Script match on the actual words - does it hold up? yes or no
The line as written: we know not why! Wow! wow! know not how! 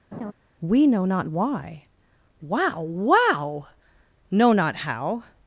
yes